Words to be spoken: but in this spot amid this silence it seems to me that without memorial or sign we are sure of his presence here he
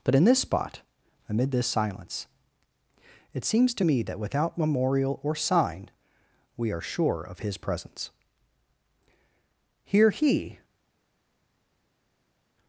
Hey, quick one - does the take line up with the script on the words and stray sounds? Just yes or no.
yes